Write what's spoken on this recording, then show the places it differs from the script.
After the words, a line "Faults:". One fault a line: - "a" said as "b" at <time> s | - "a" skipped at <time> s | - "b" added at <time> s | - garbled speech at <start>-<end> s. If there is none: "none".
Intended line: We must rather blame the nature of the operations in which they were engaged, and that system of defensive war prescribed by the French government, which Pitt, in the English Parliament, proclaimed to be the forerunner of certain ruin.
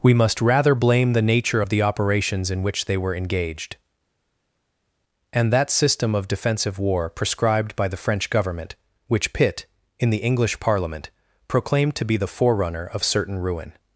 We must rather blame the nature of the operations in which they were engaged, and that system of defensive war prescribed by the French government, which Pitt, in the English Parliament, proclaimed to be the forerunner of certain ruin.
Faults:
none